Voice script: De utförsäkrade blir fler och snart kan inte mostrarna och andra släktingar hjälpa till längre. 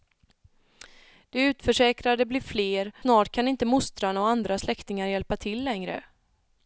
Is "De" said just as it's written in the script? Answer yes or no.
yes